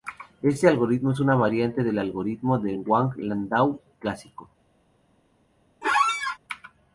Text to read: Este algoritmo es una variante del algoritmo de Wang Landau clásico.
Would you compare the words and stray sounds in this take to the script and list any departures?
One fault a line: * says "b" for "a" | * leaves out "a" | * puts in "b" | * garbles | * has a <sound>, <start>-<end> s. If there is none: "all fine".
* has a squeak, 5.8-6.4 s